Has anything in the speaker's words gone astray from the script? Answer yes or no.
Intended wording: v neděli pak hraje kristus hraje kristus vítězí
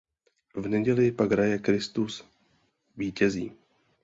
yes